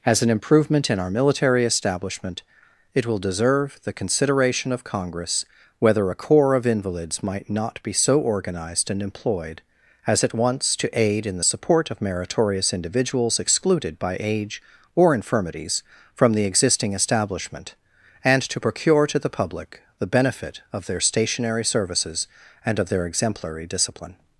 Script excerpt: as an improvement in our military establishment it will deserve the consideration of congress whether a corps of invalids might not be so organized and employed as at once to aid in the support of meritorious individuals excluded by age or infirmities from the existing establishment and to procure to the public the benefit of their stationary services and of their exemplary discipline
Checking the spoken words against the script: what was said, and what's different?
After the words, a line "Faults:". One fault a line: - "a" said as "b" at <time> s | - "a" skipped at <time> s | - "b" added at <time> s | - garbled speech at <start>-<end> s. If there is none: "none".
as an improvement in our military establishment it will deserve the consideration of congress whether a corps of invalids might not be so organized and employed as at once to aid in the support of meritorious individuals excluded by age or infirmities from the existing establishment and to procure to the public the benefit of their stationary services and of their exemplary discipline
Faults:
none